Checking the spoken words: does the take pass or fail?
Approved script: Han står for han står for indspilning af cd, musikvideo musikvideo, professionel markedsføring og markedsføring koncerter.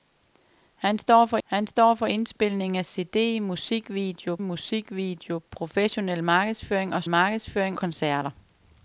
pass